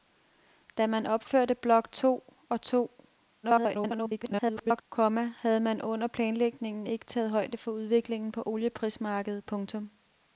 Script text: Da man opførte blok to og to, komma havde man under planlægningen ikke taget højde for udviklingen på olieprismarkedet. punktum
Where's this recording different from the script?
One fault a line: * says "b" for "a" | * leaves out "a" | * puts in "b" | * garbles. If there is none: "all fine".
* garbles